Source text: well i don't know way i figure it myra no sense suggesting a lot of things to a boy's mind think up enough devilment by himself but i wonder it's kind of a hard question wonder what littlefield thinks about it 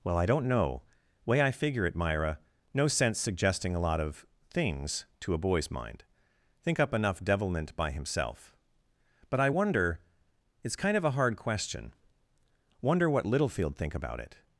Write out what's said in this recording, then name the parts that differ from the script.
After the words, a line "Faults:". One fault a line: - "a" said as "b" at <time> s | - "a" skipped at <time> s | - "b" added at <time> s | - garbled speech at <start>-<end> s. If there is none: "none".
well i don't know way i figure it myra no sense suggesting a lot of things to a boy's mind think up enough devilment by himself but i wonder it's kind of a hard question wonder what littlefield think about it
Faults:
- "thinks" said as "think" at 13.8 s